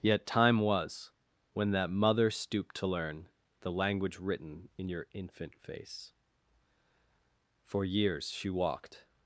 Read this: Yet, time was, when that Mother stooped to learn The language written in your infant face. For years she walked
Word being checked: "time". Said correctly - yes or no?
yes